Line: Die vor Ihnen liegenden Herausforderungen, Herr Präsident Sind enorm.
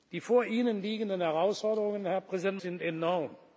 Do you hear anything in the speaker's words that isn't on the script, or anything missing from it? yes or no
no